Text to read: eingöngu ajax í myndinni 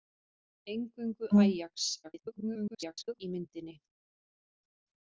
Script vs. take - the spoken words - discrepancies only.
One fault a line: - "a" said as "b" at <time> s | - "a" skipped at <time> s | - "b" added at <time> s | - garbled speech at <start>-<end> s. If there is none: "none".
- garbled speech at 2.0-3.2 s